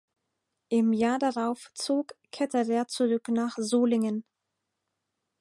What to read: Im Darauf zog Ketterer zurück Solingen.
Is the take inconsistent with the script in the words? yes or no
yes